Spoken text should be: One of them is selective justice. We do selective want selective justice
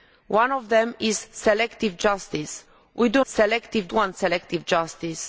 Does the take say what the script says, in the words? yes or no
yes